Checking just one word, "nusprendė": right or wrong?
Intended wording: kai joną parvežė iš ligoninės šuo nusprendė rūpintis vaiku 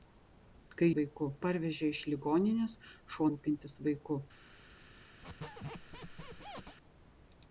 wrong